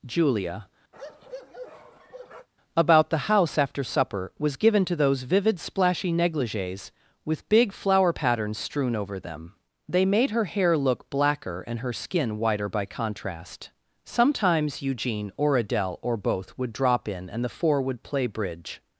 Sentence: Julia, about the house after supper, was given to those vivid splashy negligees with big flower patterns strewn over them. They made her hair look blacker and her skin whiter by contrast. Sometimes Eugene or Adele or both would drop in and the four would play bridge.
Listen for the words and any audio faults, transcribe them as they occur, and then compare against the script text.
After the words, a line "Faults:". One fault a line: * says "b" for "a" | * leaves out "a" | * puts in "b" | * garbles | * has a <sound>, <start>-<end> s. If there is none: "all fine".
Julia, about the house after supper, was given to those vivid splashy negligees with big flower patterns strewn over them. They made her hair look blacker and her skin whiter by contrast. Sometimes Eugene or Adele or both would drop in and the four would play bridge.
Faults:
* has a bark, 0.9-2.5 s